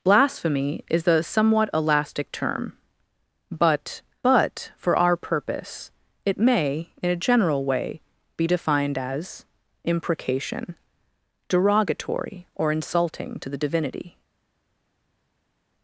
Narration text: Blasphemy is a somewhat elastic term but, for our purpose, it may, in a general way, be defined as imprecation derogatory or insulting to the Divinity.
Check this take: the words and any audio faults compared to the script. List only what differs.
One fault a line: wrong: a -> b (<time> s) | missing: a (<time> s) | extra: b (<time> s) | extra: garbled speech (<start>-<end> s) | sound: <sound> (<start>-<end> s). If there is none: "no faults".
extra: but (4.2 s)